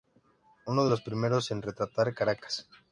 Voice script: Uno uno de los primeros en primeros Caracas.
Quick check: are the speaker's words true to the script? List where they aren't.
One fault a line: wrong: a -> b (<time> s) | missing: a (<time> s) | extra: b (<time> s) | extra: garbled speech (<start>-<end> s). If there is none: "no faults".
missing: uno (0.8 s)
wrong: primeros -> retratar (1.6 s)